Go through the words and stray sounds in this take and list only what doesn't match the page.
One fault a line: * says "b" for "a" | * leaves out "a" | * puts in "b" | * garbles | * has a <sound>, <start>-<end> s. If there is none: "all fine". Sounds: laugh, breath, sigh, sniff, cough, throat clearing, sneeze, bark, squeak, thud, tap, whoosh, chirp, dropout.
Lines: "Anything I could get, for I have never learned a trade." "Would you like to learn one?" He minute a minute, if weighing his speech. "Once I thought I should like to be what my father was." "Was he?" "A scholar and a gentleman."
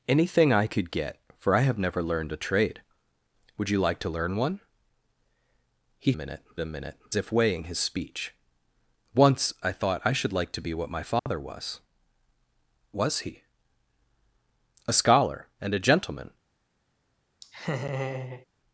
* has a dropout, 11.2-11.3 s
* has a laugh, 17.4-18.5 s